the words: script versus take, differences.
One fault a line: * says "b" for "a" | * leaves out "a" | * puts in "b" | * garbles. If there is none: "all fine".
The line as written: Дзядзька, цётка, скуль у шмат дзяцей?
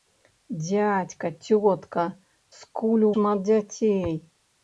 all fine